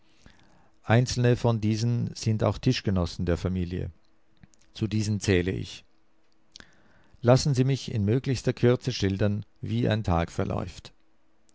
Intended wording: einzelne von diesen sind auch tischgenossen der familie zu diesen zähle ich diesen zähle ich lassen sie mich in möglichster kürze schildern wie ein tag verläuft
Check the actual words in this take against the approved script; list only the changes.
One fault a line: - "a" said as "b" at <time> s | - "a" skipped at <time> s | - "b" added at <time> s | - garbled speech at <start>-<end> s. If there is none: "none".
- "diesen zähle ich" skipped at 5.8 s